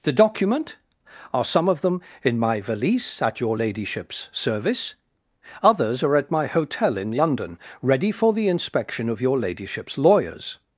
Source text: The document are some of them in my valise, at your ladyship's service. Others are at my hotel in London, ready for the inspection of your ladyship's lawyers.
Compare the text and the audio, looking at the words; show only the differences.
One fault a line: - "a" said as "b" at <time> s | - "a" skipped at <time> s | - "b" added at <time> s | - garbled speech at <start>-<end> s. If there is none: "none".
none